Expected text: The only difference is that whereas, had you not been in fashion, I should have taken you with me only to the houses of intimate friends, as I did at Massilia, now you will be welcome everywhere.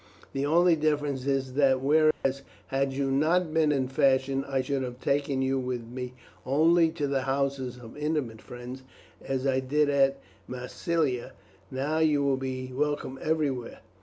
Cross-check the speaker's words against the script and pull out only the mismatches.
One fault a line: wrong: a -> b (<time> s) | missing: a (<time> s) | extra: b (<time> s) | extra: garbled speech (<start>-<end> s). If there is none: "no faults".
no faults